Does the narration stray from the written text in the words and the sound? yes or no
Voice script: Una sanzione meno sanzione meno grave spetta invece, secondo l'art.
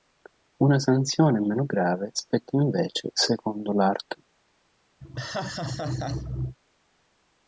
yes